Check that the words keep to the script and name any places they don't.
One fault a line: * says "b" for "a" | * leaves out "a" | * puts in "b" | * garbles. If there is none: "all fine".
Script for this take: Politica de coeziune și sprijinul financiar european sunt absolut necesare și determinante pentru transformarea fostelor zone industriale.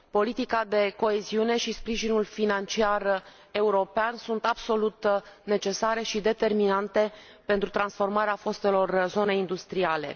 all fine